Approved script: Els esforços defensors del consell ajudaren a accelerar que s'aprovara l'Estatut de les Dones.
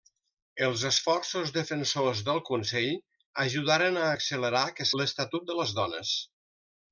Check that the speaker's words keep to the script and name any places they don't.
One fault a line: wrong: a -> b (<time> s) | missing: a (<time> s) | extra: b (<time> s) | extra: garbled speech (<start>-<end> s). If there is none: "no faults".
missing: s'aprovara (4.9 s)